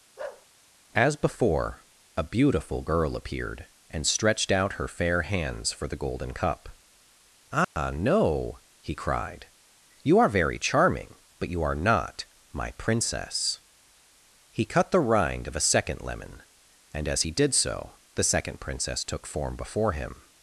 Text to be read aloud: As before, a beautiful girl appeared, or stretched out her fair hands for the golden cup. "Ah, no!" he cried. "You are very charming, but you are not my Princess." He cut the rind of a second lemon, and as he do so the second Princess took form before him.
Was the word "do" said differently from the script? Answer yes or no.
yes